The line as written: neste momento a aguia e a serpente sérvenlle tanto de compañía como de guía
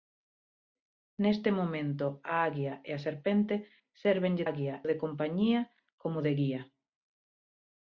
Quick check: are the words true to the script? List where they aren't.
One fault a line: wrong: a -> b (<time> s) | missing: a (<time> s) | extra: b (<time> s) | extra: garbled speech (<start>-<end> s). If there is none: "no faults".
wrong: tanto -> aguia (4.5 s)